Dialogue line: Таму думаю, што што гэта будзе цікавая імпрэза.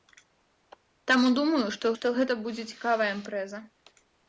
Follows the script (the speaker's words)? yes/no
yes